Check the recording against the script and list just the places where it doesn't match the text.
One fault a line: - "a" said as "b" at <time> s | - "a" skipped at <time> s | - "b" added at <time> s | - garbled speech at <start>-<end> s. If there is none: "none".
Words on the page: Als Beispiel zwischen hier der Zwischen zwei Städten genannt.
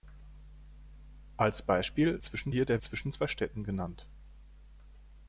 none